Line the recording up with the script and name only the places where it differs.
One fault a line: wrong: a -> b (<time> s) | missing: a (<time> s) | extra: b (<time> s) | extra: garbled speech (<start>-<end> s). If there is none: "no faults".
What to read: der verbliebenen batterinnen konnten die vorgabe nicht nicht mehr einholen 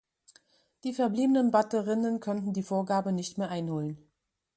wrong: der -> die (0.8 s)
missing: nicht (3.4 s)